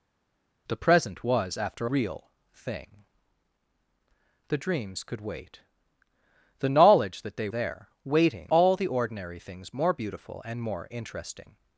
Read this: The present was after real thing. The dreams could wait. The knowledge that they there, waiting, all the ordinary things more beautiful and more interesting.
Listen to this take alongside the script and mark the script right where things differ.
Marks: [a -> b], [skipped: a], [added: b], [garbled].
The present was after real thing. The dreams could wait. The knowledge that they there, waiting, all the ordinary things more beautiful and more interesting.